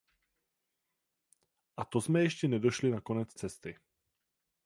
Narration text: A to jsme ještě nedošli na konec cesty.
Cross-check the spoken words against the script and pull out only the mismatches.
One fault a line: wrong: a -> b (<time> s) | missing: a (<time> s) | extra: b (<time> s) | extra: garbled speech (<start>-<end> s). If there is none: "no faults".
no faults